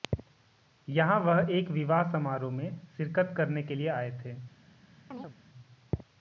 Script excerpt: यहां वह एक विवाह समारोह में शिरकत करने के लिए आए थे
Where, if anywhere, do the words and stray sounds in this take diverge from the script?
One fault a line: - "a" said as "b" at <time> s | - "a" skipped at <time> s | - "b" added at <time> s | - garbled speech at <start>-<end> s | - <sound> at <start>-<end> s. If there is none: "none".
- chirp at 5.1-5.4 s